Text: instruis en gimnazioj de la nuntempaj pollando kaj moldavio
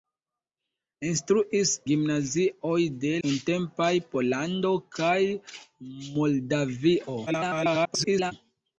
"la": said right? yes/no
no